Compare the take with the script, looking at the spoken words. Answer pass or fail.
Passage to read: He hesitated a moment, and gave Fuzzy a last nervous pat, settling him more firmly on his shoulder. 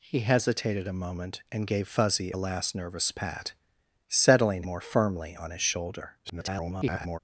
fail